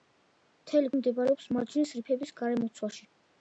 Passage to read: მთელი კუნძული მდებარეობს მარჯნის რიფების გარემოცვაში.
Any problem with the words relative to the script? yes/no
yes